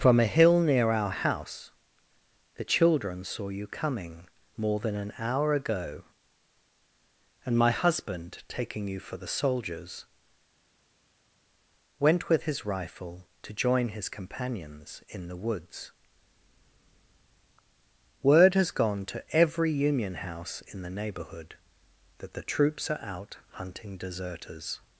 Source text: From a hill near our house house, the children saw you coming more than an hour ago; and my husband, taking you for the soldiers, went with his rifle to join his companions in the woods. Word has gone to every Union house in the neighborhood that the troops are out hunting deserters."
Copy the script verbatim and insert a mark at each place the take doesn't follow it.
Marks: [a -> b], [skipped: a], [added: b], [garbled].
From a hill near our house [skipped: house,] the children saw you coming more than an hour ago; and my husband, taking you for the soldiers, went with his rifle to join his companions in the woods. Word has gone to every Union house in the neighborhood that the troops are out hunting deserters."